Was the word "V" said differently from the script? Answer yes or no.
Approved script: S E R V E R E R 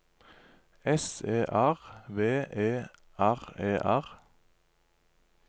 no